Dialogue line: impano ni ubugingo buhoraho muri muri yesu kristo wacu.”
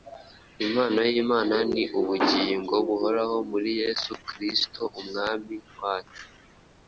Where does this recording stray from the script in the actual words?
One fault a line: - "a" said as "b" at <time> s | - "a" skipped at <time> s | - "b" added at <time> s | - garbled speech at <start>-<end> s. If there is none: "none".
- "y'imana" added at 1.1 s
- "muri" skipped at 3.7 s
- "umwami" added at 5.0 s